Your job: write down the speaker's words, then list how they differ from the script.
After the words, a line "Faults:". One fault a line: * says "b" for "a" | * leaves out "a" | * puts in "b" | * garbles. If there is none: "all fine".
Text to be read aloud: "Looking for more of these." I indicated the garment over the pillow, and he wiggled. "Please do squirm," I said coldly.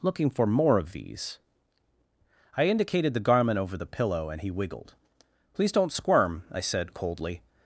"Looking for more of these." I indicated the garment over the pillow, and he wiggled. "Please don't squirm," I said coldly.
Faults:
* says "don't" for "do"